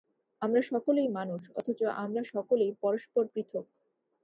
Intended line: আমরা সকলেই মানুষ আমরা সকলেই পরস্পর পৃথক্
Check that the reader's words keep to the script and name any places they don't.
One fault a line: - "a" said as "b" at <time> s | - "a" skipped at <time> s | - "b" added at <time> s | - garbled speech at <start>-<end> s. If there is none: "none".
- "অথচ" added at 1.6 s